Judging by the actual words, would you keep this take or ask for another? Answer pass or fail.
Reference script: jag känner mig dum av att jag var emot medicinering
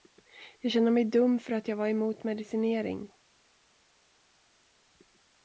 fail